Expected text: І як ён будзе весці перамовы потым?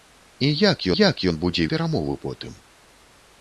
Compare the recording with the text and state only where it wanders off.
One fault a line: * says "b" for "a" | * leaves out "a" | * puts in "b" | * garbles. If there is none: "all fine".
* puts in "як"
* leaves out "весці"